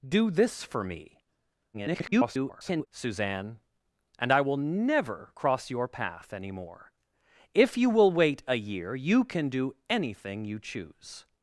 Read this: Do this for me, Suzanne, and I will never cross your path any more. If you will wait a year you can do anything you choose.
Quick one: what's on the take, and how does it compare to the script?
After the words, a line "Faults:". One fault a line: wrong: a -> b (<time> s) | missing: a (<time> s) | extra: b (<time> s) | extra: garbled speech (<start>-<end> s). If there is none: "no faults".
Do this for me, [garbled] Suzanne, and I will never cross your path any more. If you will wait a year you can do anything you choose.
Faults:
extra: garbled speech (1.7-2.9 s)